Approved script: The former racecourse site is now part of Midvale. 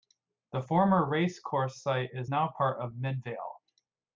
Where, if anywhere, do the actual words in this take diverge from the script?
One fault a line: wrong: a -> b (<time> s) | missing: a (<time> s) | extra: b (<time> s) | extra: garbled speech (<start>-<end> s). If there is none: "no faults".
no faults